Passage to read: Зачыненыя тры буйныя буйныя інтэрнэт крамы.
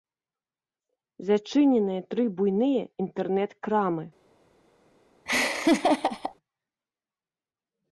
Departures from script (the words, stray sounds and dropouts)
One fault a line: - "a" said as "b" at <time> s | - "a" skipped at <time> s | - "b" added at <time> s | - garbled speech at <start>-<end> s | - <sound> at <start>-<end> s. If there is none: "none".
- "буйныя" skipped at 2.8 s
- laugh at 5.3-6.4 s